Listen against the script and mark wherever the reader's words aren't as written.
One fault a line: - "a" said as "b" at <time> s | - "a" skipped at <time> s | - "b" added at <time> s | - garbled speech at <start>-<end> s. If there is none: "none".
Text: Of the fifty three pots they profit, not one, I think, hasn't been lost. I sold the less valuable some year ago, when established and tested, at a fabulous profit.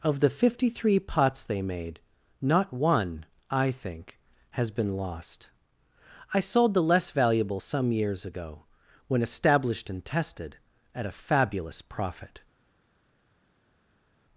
- "profit" said as "made" at 1.6 s
- "hasn't" said as "has" at 4.5 s
- "year" said as "years" at 7.9 s